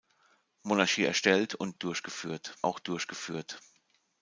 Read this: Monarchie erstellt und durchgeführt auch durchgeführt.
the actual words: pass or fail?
pass